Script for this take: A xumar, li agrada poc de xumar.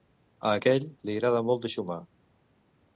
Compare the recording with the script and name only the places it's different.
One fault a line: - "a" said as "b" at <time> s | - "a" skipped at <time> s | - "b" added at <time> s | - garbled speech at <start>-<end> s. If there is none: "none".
- "xumar" said as "aquell" at 0.6 s
- "poc" said as "molt" at 1.5 s